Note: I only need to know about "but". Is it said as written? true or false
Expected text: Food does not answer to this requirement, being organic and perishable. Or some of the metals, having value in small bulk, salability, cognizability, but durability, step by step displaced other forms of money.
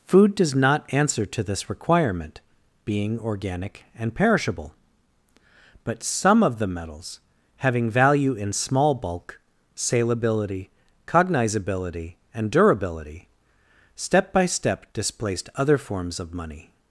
false